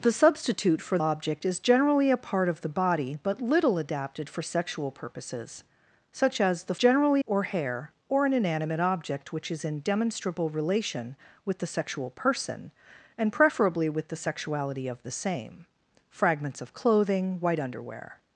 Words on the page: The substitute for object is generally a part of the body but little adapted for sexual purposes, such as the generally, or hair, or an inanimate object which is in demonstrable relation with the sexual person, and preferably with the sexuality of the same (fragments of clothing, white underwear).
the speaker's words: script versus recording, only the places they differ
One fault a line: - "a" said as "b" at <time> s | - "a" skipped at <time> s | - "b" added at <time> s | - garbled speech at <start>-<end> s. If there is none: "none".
none